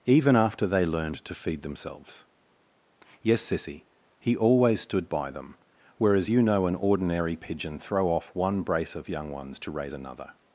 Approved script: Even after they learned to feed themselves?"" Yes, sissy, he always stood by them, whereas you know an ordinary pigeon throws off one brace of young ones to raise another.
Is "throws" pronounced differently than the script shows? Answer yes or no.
yes